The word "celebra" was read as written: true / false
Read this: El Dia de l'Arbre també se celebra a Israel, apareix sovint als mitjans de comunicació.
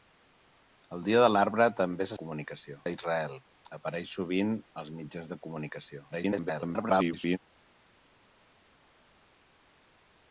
false